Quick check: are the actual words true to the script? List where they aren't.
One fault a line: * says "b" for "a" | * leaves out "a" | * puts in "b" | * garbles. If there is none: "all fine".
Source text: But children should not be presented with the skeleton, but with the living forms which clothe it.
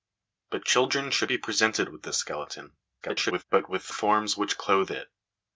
* leaves out "not"
* garbles
* leaves out "the living"